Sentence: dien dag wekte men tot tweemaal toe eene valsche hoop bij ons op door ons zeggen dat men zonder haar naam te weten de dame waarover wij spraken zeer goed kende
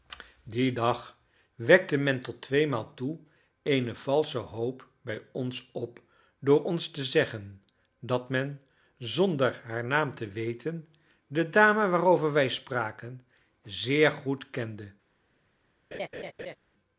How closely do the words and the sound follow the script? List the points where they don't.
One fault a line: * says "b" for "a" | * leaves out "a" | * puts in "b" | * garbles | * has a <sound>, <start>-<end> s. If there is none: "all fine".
* puts in "te"
* has a laugh, 15.9-16.6 s